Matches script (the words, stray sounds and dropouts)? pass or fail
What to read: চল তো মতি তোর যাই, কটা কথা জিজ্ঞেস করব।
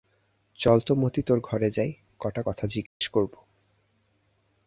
fail